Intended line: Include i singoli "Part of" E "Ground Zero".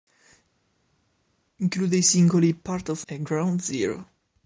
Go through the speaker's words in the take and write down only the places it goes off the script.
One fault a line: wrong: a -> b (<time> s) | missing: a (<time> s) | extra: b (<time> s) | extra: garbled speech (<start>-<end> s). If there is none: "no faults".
no faults